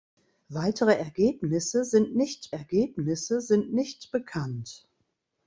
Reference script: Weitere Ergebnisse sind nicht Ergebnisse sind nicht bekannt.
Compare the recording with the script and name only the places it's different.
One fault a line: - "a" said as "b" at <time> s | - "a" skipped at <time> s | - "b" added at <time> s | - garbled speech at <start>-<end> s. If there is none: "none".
none